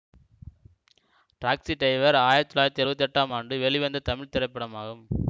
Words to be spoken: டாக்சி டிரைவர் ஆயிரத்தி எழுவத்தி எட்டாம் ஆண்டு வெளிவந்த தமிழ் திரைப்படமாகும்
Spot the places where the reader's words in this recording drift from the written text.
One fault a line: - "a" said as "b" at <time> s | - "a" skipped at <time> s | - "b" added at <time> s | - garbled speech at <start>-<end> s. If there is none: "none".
- "தொள்ளாயிரத்தி" added at 2.5 s